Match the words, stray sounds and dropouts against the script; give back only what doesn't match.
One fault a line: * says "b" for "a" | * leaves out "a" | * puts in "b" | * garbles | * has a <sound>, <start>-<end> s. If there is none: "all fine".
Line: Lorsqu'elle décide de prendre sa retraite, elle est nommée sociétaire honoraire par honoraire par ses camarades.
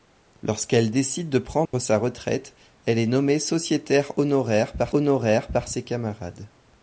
* has a dropout, 1.7-1.7 s